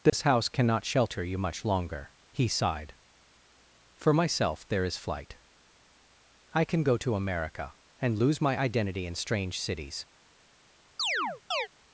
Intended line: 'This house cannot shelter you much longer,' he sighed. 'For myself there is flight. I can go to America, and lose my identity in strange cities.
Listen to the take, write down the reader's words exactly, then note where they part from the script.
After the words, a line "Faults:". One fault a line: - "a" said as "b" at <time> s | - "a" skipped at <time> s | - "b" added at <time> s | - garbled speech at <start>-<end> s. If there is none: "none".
'This house cannot shelter you much longer,' he sighed. 'For myself there is flight. I can go to America, and lose my identity in strange cities.
Faults:
none